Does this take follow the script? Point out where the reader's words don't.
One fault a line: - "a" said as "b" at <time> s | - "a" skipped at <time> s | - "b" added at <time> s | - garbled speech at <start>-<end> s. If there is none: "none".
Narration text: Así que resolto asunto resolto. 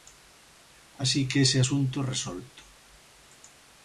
- "resolto" said as "ese" at 1.4 s